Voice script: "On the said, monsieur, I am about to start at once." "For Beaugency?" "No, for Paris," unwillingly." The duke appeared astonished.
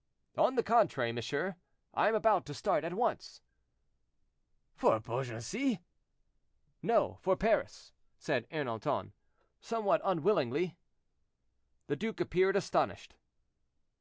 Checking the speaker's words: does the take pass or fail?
fail